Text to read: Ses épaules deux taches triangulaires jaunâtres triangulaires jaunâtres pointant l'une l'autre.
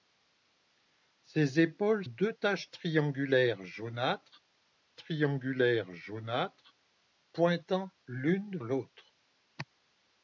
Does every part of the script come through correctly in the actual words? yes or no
yes